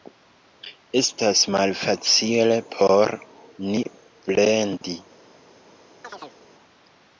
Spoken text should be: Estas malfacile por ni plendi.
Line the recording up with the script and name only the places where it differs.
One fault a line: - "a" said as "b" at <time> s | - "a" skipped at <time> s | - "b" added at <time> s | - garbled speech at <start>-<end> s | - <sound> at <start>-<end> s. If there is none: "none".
- chirp at 6.0-6.4 s